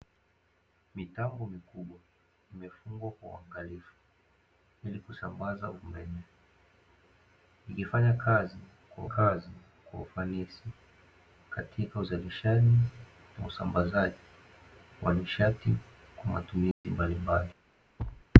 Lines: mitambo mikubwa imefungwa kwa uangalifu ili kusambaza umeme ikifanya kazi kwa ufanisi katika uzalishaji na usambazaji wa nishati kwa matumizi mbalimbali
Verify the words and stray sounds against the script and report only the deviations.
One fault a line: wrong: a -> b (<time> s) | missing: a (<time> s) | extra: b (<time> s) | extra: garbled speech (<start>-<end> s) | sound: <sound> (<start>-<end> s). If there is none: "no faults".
extra: kazi kwa (9.0 s)
sound: dropout (16.7-16.8 s)
sound: thud (18.0-18.3 s)